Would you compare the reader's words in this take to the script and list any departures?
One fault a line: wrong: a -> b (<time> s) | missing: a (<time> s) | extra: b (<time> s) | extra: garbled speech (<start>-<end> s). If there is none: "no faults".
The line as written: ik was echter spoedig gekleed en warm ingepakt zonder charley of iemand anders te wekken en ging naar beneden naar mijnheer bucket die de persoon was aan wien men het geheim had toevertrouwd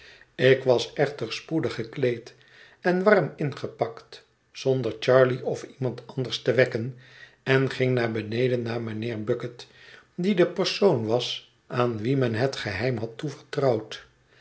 no faults